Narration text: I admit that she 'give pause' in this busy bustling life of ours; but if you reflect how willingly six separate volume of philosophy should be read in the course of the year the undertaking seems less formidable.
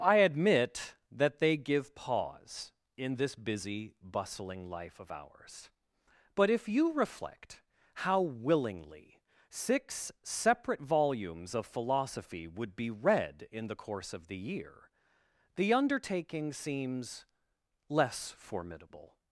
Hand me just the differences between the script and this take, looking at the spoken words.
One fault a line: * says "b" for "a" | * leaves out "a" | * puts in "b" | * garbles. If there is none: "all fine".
* says "they" for "she"
* says "volumes" for "volume"
* says "would" for "should"